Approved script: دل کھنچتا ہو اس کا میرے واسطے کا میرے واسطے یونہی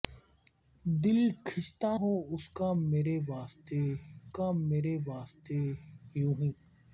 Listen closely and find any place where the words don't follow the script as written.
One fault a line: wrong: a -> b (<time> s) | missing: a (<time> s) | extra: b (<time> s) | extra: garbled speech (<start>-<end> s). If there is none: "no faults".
no faults